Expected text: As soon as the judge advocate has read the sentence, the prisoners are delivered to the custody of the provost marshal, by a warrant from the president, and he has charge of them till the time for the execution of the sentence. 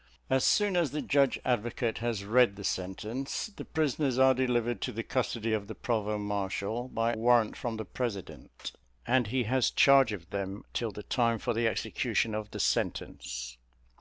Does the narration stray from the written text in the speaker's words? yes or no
yes